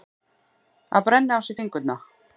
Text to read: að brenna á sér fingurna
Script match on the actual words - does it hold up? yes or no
yes